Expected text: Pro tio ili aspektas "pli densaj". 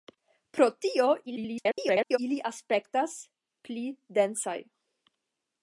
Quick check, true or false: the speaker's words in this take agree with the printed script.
false